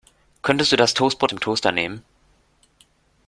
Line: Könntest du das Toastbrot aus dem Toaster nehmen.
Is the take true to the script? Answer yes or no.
no